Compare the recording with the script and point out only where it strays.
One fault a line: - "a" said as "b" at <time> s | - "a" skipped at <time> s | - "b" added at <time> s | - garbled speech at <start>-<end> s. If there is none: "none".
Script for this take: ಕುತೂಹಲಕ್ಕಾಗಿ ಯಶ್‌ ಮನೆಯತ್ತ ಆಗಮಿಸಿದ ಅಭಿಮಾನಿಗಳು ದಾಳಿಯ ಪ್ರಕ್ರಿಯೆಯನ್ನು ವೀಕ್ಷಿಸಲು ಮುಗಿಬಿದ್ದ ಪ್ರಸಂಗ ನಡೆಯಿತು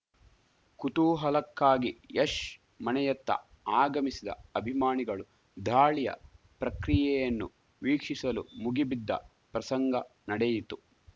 none